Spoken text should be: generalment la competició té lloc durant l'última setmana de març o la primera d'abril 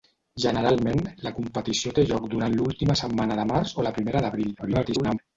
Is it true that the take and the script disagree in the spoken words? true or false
true